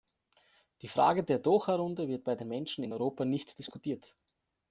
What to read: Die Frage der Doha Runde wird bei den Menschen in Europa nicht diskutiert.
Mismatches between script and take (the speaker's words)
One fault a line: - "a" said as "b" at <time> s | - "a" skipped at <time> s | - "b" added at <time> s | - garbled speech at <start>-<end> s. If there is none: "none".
none